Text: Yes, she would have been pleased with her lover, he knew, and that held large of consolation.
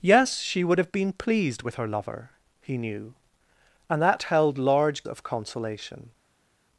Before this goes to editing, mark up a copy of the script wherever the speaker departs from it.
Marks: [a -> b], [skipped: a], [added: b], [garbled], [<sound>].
Yes, she would have been pleased with her lover, he knew, and that held large of consolation.